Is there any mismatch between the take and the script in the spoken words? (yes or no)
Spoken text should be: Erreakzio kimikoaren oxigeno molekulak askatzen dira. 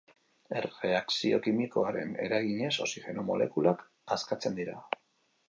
yes